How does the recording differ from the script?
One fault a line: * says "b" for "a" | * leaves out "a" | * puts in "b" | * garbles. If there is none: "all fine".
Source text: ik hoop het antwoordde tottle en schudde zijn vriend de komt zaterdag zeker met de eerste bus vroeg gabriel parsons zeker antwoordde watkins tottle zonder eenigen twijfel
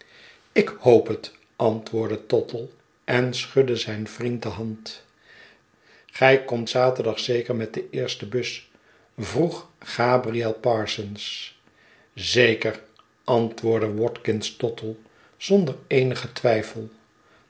* puts in "hand gij"